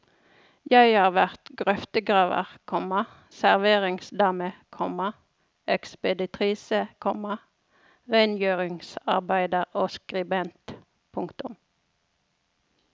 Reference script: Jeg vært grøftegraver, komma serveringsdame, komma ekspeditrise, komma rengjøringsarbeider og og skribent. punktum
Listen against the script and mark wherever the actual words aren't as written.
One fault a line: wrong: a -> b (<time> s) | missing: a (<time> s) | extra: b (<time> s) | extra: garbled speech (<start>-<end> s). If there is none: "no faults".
extra: har (1.0 s)
missing: og (9.9 s)